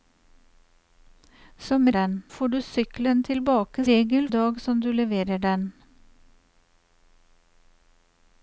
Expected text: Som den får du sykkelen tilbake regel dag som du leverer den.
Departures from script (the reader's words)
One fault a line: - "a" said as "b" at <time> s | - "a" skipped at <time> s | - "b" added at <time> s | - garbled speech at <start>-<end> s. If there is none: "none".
none